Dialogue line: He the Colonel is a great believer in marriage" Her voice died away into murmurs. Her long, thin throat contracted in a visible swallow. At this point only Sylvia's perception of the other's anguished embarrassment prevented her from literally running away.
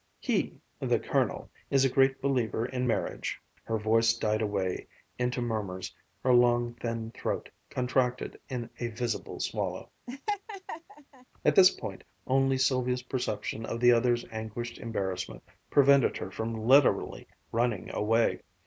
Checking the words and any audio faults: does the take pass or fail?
fail